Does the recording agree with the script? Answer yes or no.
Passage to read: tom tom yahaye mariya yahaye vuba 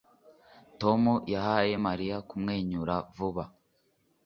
no